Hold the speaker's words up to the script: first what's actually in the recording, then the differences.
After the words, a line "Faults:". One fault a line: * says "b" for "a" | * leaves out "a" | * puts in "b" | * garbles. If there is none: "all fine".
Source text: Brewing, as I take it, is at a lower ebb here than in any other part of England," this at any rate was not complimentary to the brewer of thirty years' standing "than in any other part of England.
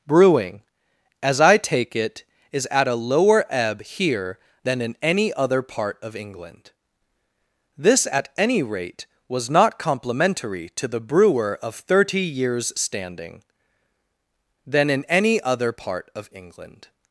Brewing, as I take it, is at a lower ebb here than in any other part of England," this at any rate was not complimentary to the brewer of thirty years' standing "than in any other part of England.
Faults:
all fine